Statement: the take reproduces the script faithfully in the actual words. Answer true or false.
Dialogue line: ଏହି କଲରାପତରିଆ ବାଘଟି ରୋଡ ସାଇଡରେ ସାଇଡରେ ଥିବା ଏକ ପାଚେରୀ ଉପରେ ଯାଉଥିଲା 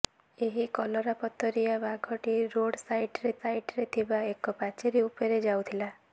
true